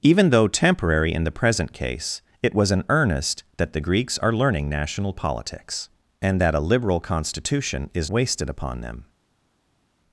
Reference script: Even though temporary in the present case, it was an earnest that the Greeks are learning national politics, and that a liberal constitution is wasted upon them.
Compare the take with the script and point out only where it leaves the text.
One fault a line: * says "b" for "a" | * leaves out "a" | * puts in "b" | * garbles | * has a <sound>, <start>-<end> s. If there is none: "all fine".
all fine